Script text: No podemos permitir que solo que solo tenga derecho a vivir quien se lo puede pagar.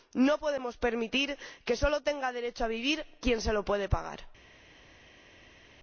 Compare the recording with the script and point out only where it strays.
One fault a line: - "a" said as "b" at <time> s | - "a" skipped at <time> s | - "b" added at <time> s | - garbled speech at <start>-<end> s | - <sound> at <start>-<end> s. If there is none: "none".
- "que solo" skipped at 2.0 s